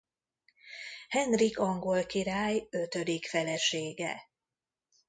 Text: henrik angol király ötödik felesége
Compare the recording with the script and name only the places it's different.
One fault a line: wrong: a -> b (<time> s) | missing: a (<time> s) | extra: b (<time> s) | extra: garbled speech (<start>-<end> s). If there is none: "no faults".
no faults